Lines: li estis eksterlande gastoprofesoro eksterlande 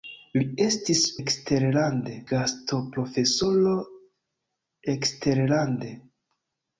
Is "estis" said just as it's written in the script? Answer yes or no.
yes